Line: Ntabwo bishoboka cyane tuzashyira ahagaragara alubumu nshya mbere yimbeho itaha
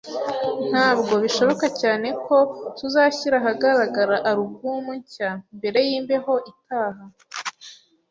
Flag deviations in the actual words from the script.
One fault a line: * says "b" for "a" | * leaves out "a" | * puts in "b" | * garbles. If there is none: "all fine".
* puts in "ko"